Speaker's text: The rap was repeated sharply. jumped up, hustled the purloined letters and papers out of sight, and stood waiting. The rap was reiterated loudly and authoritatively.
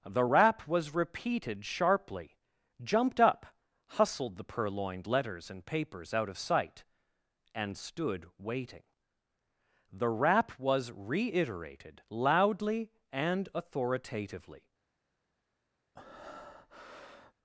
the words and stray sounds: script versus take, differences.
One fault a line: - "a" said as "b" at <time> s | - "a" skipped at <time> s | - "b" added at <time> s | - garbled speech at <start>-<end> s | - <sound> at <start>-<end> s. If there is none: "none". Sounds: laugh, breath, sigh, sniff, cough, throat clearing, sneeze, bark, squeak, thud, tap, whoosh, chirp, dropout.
- breath at 15.9-17.3 s